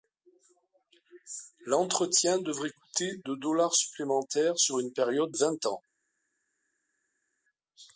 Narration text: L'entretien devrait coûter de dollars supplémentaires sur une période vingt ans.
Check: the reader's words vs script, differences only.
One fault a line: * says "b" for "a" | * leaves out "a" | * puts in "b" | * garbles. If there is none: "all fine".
all fine